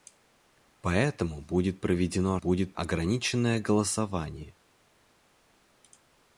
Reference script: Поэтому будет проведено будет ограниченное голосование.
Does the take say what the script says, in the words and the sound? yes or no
yes